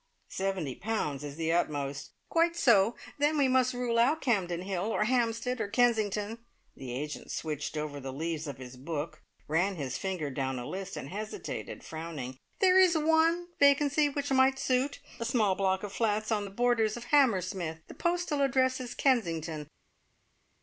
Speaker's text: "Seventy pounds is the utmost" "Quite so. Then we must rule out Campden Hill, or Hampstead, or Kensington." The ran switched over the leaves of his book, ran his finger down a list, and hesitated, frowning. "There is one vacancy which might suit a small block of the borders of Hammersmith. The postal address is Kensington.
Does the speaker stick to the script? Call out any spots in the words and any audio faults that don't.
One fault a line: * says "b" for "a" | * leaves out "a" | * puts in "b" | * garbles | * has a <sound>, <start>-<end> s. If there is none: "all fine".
* says "agent" for "ran"
* puts in "flats on"